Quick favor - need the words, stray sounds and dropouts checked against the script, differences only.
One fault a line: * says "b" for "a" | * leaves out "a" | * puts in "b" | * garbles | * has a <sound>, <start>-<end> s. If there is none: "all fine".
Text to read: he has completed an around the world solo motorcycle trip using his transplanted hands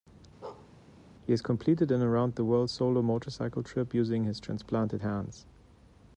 * has a bark, 0.4-0.7 s